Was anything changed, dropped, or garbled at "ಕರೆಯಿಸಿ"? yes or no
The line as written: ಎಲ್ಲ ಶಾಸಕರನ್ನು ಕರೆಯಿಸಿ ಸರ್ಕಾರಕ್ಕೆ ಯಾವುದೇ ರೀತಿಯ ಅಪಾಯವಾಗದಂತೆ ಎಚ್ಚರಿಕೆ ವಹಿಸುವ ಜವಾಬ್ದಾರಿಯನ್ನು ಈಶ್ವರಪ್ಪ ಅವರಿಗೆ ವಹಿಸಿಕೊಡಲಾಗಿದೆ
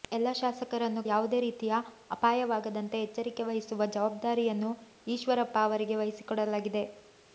yes